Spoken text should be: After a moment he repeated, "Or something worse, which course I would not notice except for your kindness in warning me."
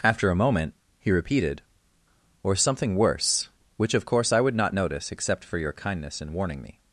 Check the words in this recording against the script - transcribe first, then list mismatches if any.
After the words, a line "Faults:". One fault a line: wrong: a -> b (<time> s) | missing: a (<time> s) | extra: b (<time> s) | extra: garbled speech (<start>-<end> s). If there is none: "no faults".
After a moment he repeated, "Or something worse, which of course I would not notice except for your kindness in warning me."
Faults:
extra: of (3.9 s)